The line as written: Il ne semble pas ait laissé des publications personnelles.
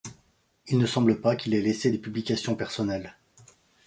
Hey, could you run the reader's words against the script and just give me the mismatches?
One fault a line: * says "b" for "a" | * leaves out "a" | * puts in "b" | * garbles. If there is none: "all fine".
* puts in "qu'il"